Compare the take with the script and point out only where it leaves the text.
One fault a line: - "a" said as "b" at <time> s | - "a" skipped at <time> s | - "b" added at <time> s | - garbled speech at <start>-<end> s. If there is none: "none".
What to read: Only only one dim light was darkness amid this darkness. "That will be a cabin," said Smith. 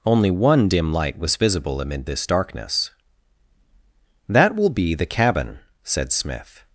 - "only" skipped at 0.3 s
- "darkness" said as "visible" at 1.4 s
- "a" said as "the" at 4.9 s